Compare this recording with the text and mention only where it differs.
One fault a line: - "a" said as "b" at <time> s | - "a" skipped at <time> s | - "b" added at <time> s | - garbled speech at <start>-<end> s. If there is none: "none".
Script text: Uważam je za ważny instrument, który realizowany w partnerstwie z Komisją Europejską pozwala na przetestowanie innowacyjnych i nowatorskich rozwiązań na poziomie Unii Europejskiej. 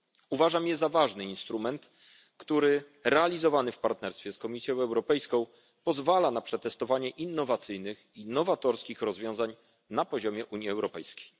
none